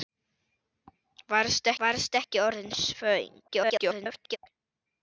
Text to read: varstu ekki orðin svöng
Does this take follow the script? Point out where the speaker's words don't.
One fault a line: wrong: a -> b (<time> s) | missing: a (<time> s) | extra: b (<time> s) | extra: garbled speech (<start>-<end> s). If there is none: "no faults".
extra: varstu (1.8 s)
extra: garbled speech (3.5-4.4 s)